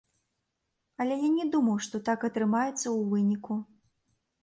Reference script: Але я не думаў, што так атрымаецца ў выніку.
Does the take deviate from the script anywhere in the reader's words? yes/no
no